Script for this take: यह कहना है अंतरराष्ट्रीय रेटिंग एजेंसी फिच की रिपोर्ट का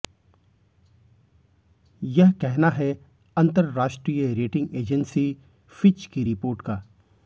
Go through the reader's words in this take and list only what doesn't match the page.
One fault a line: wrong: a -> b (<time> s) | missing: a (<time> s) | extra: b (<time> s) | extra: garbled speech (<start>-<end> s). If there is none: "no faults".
no faults